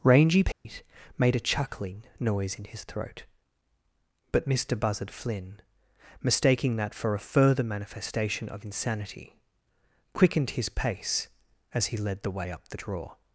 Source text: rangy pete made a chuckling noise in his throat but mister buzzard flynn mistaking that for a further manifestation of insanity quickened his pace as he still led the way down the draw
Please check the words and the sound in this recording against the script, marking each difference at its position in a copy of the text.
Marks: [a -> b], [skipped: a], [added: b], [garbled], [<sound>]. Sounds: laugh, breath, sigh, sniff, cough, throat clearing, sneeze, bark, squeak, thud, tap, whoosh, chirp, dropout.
rangy pete [dropout] made a chuckling noise in his throat but mister buzzard flynn mistaking that for a further manifestation of insanity quickened his pace as he [skipped: still] led the way [down -> up] the draw